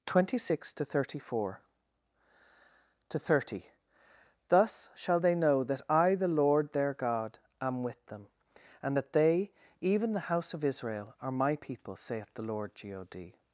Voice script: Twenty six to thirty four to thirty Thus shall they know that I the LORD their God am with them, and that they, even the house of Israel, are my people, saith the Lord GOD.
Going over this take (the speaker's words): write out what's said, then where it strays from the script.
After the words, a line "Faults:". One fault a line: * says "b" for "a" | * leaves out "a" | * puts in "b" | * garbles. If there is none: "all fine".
Twenty six to thirty four to thirty Thus shall they know that I the LORD their God am with them, and that they, even the house of Israel, are my people, saith the Lord GOD.
Faults:
all fine